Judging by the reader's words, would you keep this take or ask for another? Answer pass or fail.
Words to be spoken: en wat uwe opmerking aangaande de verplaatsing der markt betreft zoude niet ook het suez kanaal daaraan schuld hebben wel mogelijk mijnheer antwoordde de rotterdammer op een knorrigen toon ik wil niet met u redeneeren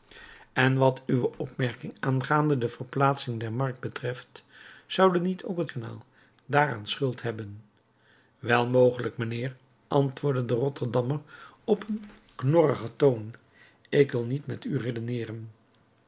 fail